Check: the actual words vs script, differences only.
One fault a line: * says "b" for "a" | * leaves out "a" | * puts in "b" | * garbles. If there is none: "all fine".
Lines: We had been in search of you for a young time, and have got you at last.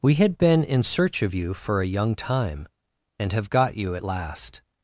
all fine